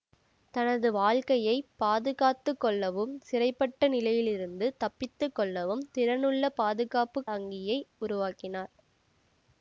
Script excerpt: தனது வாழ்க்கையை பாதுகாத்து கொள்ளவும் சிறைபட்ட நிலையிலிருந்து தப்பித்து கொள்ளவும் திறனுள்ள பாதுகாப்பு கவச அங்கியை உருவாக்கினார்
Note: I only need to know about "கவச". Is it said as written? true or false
false